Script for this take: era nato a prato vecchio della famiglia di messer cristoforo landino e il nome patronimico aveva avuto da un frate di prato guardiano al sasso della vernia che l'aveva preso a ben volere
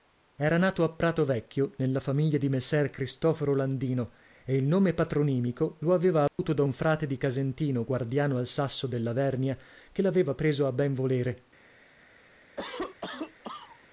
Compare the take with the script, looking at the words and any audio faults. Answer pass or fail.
fail